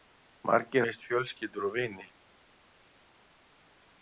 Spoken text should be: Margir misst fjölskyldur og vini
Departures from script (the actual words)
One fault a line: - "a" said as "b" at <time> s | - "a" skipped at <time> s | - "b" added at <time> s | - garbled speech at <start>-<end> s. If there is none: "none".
none